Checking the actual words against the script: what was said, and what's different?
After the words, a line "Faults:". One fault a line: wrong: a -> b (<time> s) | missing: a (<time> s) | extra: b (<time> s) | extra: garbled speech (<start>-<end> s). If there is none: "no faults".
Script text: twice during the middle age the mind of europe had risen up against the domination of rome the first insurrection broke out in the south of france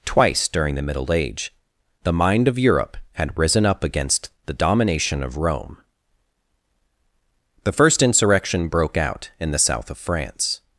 twice during the middle age the mind of europe had risen up against the domination of rome the first insurrection broke out in the south of france
Faults:
no faults